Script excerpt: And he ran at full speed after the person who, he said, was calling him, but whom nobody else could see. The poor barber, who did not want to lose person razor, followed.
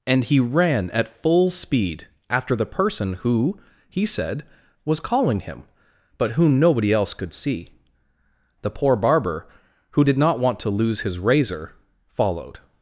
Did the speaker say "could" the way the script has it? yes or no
yes